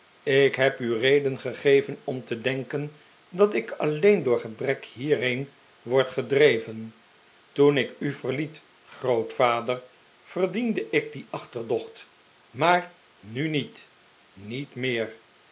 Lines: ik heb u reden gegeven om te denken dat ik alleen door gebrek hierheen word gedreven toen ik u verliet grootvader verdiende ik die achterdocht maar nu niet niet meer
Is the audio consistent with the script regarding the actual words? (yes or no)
yes